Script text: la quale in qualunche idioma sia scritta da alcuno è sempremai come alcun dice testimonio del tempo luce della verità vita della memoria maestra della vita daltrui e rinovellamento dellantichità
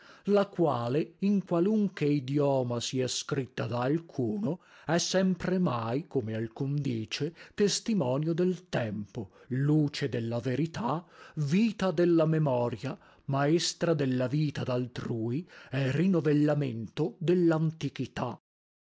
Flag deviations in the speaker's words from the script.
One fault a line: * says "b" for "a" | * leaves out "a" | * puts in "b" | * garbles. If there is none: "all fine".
all fine